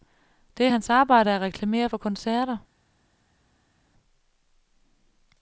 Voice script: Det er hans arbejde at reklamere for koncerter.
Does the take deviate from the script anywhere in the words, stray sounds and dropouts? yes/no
no